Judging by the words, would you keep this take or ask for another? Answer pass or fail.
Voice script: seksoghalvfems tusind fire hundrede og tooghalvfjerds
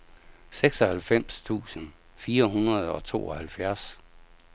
pass